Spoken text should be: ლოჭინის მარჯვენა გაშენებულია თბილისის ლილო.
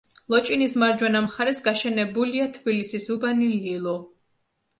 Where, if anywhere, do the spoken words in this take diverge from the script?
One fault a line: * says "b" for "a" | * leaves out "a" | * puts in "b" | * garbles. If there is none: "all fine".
* puts in "მხარეს"
* puts in "უბანი"